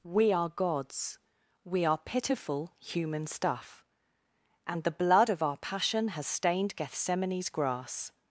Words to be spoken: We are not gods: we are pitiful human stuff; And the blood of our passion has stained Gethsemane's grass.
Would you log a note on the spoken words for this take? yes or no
yes